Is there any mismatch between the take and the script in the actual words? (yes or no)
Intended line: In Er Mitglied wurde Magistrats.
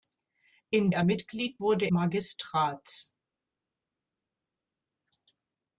no